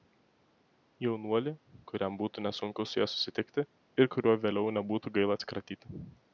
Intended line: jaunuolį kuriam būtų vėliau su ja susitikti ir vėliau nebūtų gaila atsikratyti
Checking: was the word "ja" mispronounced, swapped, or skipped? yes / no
no